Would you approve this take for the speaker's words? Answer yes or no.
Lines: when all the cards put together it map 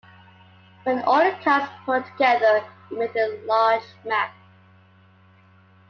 no